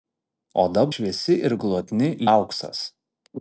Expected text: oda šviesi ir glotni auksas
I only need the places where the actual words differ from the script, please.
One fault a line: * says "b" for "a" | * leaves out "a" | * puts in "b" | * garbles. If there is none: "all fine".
all fine